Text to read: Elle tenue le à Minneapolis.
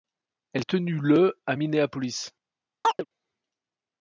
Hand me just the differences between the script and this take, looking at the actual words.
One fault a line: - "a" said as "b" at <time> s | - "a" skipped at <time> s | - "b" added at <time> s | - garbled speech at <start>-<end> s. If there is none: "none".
none